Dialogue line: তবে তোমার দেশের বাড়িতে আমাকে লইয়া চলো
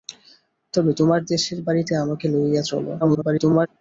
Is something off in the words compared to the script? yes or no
yes